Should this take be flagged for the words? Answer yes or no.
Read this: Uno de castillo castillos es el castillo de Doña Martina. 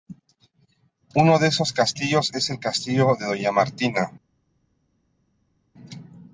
yes